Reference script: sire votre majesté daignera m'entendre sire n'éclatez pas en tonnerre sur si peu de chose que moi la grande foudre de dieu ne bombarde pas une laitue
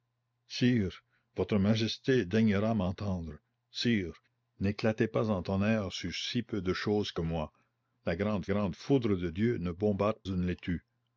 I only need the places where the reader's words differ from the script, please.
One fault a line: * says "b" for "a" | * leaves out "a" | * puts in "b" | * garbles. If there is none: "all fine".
* puts in "grande"
* leaves out "pas"